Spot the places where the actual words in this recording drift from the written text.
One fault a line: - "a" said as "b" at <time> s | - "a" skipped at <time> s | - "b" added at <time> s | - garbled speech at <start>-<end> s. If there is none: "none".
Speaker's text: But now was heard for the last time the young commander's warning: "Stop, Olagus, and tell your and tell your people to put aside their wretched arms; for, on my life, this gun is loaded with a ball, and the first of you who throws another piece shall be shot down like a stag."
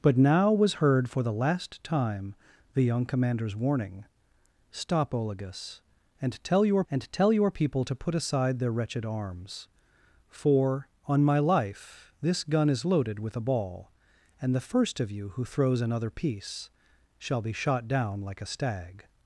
none